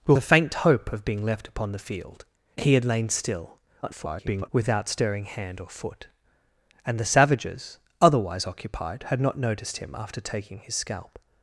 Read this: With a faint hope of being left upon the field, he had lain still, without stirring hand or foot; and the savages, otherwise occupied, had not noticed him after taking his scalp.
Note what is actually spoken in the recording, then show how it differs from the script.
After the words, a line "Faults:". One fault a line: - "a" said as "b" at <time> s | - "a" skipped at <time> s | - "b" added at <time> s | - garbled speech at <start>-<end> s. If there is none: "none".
With a faint hope of being left upon the field, he had lain still, [garbled] without stirring hand or foot; and the savages, otherwise occupied, had not noticed him after taking his scalp.
Faults:
- garbled speech at 3.8-4.5 s